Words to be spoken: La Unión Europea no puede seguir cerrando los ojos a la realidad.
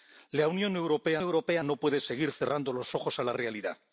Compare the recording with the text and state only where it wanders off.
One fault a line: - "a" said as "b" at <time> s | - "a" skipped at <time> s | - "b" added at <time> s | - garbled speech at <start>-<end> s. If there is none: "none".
- "Europea" added at 1.2 s